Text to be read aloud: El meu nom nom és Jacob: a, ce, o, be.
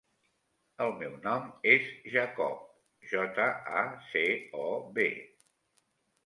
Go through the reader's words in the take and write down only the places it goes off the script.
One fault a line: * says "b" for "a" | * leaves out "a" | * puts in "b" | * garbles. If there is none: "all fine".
* leaves out "nom"
* puts in "jota"